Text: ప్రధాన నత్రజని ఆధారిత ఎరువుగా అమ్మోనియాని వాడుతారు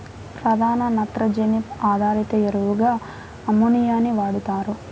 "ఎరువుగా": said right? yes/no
yes